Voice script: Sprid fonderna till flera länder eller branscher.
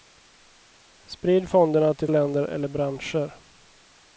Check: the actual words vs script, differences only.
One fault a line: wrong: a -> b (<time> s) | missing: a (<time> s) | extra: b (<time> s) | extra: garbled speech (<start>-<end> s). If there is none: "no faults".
missing: flera (2.1 s)